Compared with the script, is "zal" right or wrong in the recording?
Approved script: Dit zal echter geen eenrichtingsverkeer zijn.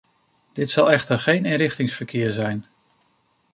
right